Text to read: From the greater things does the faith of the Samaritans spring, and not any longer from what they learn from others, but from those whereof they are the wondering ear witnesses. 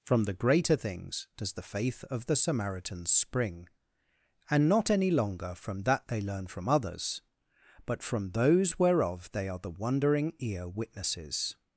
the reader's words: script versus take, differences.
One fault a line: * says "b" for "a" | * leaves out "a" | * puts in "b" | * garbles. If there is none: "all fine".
* says "that" for "what"